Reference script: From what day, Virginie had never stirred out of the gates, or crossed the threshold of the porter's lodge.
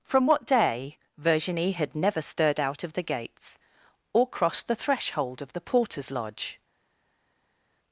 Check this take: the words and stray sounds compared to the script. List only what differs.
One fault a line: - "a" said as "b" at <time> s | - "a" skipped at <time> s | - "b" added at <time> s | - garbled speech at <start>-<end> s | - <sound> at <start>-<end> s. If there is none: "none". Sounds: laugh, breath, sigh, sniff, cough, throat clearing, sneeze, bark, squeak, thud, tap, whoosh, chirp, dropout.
none